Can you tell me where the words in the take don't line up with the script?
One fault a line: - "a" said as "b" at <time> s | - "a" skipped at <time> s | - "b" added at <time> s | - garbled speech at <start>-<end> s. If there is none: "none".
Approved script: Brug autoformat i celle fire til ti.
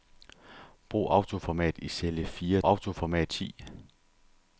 - "til" said as "autoformat" at 2.6 s